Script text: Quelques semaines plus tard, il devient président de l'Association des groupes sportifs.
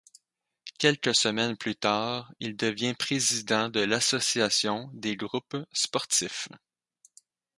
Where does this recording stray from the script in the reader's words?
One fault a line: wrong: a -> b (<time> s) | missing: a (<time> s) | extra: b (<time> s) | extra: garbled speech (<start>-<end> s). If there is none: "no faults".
no faults